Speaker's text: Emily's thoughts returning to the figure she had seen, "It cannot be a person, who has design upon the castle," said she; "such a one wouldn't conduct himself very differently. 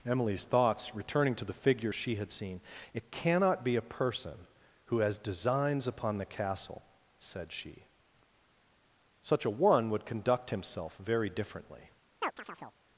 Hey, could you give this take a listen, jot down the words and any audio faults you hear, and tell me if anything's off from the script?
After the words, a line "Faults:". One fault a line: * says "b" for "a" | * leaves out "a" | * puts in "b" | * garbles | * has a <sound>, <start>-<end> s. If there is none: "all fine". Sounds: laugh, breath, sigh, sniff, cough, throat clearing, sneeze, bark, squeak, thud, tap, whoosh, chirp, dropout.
Emily's thoughts returning to the figure she had seen, "It cannot be a person, who has designs upon the castle," said she; "such a one would conduct himself very differently.
Faults:
* says "designs" for "design"
* says "would" for "wouldn't"
* has a chirp, 12.2-12.8 s